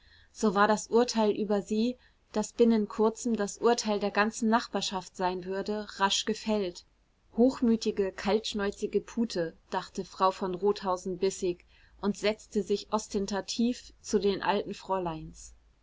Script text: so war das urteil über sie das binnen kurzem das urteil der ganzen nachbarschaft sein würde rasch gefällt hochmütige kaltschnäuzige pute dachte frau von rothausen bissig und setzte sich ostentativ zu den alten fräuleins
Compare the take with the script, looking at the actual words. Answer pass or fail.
pass